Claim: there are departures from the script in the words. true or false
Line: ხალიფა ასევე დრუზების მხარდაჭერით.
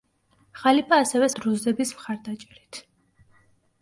false